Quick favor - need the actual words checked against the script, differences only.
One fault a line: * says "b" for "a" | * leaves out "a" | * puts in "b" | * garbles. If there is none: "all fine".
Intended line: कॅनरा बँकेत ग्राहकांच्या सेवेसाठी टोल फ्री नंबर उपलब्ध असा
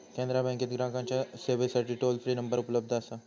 all fine